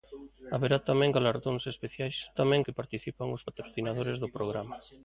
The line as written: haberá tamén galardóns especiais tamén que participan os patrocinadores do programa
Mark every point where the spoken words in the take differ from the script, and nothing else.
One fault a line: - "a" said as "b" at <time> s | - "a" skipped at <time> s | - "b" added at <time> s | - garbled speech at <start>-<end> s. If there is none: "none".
none